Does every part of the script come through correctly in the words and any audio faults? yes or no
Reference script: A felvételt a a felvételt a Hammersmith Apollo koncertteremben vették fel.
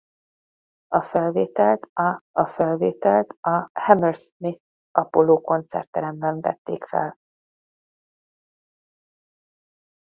yes